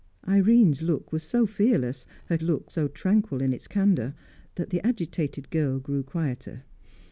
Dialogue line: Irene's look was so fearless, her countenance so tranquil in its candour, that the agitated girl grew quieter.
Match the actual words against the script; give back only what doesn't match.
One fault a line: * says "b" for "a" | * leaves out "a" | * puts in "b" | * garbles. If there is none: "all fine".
* says "look" for "countenance"